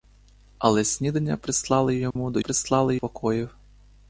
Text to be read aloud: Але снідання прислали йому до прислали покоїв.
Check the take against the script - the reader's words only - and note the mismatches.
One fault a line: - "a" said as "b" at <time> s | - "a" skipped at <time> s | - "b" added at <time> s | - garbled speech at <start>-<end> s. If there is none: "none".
none